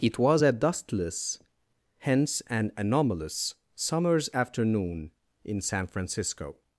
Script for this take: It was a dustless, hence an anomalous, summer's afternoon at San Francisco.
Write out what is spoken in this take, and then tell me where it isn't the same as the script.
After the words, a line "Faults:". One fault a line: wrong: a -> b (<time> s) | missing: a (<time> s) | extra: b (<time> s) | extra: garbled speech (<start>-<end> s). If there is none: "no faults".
It was a dustless, hence an anomalous, summer's afternoon in San Francisco.
Faults:
wrong: at -> in (5.4 s)